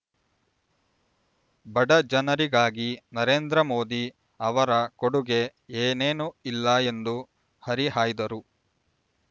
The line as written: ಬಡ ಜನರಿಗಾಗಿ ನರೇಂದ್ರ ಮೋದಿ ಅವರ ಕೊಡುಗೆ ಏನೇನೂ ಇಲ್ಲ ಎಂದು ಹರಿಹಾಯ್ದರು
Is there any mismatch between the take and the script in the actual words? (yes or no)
no